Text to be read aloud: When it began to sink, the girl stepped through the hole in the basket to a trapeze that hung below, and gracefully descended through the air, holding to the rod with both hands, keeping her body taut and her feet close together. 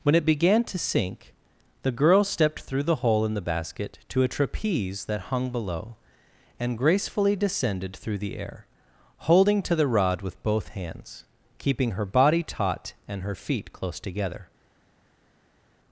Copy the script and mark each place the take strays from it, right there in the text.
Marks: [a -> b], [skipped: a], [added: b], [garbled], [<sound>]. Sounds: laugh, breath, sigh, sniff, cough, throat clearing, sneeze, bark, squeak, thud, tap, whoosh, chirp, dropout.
When it began to sink, the girl stepped through the hole in the basket to a trapeze that hung below, and gracefully descended through the air, holding to the rod with both hands, keeping her body taut and her feet close together.